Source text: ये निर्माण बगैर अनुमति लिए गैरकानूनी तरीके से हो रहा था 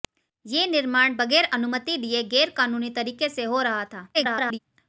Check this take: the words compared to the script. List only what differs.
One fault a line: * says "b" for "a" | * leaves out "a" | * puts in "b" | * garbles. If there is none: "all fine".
* garbles